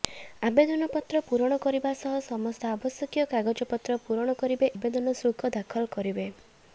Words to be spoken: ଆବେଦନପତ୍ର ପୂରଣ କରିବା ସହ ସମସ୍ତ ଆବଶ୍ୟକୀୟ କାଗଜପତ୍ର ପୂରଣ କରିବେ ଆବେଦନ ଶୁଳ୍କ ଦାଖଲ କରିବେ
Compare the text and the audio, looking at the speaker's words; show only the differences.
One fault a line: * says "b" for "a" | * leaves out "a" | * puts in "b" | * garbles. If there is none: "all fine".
all fine